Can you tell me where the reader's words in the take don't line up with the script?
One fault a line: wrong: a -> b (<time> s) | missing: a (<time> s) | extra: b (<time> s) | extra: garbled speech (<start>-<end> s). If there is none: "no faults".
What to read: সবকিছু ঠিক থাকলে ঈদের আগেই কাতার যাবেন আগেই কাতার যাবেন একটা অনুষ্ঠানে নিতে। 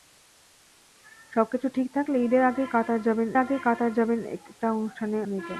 no faults